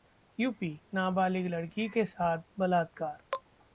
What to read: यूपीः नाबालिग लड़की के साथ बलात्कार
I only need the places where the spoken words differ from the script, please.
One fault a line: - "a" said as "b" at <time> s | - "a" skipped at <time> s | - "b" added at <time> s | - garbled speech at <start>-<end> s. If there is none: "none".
none